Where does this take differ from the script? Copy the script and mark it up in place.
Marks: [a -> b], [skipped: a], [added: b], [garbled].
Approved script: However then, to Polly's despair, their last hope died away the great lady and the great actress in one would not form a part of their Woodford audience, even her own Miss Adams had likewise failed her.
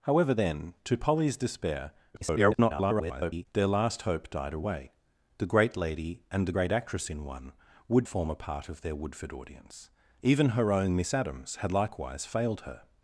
However then, to Polly's despair, [garbled] their last hope died away the great lady and the great actress in one would [skipped: not] form a part of their Woodford audience, even her own Miss Adams had likewise failed her.